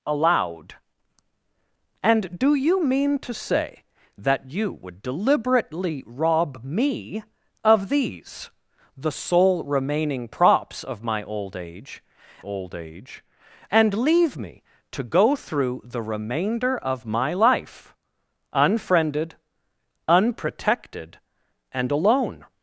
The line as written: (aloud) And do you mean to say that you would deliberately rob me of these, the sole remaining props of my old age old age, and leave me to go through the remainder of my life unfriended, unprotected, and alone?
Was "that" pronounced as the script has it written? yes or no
yes